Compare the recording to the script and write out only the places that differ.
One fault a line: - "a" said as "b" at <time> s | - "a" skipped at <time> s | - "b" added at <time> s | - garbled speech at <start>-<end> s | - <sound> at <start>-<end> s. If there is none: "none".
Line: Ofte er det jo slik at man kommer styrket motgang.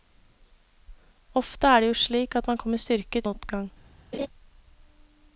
- laugh at 4.1-4.3 s